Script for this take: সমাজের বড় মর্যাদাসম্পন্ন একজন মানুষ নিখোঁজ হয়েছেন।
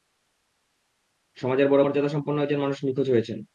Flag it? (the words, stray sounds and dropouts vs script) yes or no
no